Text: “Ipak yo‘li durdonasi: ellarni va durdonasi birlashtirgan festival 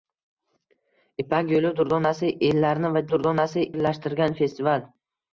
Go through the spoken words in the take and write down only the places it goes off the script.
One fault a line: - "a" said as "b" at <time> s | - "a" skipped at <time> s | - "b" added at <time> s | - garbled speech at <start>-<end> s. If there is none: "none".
none